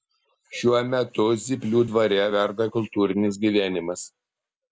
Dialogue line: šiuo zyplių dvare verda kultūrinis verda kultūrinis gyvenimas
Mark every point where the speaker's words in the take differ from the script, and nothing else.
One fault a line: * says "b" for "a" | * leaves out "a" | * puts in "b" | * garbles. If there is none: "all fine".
* puts in "metu"
* leaves out "verda kultūrinis"